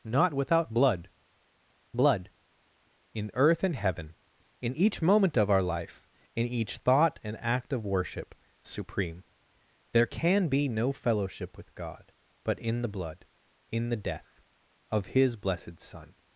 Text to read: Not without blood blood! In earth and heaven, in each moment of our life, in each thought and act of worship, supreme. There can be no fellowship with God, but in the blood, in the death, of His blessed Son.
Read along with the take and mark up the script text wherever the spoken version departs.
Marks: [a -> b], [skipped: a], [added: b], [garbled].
Not without blood blood! In earth and heaven, in each moment of our life, in each thought and act of worship, supreme. There can be no fellowship with God, but in the blood, in the death, of His blessed Son.